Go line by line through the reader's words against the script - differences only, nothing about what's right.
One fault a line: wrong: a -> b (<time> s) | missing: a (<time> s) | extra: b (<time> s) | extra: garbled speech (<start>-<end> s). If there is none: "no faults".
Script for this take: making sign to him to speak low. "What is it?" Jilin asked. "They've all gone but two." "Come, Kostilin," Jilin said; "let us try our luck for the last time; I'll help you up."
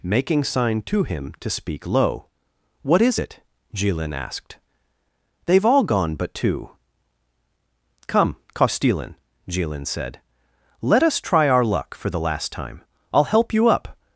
no faults